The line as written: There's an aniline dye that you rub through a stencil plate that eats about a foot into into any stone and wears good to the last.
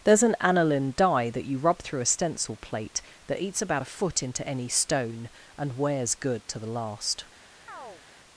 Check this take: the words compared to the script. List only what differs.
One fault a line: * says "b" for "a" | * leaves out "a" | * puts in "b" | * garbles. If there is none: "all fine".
* leaves out "into"